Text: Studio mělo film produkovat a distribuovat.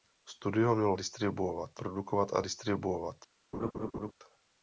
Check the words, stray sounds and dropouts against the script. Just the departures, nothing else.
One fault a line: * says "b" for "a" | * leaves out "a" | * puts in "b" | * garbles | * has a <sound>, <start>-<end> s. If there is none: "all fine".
* says "distribuovat" for "film"
* has a laugh, 3.5-4.1 s